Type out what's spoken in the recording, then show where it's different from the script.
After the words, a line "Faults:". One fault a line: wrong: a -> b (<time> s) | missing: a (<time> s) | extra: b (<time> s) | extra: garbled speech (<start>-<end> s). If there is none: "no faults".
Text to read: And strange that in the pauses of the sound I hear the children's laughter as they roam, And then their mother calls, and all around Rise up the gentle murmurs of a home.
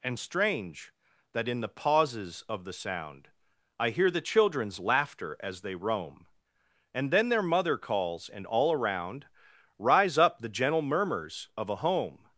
And strange that in the pauses of the sound I hear the children's laughter as they roam, And then their mother calls, and all around Rise up the gentle murmurs of a home.
Faults:
no faults